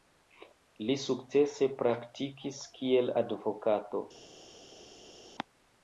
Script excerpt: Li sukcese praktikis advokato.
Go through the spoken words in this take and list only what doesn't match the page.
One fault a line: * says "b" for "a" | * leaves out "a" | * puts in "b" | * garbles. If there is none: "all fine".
* puts in "kiel"